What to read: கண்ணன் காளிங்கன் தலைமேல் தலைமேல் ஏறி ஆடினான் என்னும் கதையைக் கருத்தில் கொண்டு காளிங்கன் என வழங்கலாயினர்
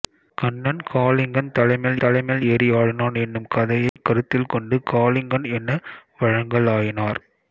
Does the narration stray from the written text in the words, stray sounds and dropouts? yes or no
yes